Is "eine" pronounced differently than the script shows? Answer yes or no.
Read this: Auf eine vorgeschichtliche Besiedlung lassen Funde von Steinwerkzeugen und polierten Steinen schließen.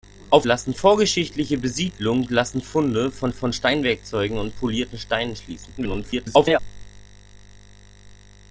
yes